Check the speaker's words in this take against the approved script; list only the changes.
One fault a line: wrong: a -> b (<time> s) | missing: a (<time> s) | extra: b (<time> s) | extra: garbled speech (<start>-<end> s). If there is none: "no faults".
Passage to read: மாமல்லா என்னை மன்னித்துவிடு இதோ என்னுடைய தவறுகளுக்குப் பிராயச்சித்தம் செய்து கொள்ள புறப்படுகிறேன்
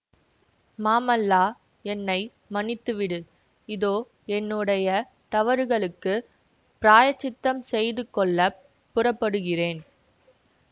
no faults